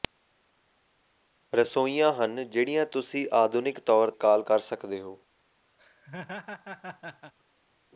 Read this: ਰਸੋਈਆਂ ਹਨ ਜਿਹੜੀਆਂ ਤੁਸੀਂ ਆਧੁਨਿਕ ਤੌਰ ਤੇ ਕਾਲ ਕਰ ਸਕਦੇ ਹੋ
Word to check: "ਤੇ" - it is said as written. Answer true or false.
false